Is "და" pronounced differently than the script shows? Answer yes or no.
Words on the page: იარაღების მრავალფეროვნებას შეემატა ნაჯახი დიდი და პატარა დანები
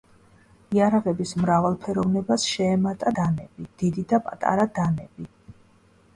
no